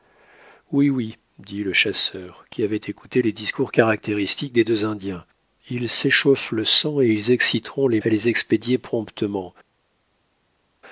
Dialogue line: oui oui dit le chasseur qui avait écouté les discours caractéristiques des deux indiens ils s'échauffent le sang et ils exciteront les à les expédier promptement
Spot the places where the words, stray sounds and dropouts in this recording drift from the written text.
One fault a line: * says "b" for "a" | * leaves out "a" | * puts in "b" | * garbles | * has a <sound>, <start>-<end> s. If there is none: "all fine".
all fine